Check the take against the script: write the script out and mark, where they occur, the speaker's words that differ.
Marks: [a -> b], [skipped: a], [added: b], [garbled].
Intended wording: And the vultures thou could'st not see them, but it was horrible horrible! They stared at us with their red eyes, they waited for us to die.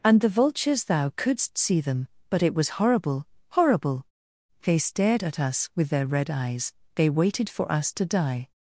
And the vultures thou could'st [skipped: not] see them, but it was horrible horrible! They stared at us with their red eyes, they waited for us to die.